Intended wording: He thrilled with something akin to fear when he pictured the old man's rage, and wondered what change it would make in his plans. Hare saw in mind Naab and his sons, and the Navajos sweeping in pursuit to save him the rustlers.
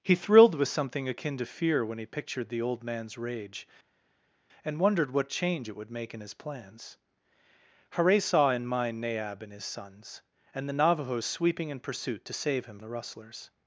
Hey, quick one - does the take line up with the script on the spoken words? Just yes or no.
yes